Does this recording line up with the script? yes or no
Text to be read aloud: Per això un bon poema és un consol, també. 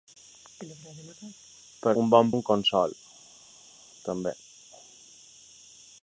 no